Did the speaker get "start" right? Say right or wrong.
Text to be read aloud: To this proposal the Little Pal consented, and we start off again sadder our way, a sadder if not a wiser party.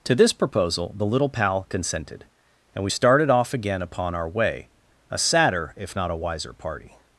wrong